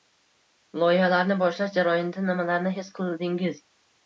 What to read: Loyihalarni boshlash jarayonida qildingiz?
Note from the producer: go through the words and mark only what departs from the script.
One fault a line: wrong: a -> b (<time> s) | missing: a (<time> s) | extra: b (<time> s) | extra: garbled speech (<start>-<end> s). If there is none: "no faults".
extra: nimalarni his (2.3 s)